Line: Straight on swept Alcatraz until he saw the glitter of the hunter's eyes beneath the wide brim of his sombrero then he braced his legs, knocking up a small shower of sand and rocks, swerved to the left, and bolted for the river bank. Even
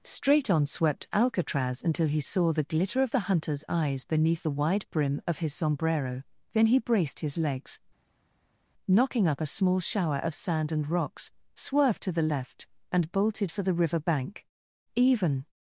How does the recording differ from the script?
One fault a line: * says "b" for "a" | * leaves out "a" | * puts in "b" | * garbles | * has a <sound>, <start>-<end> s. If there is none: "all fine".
all fine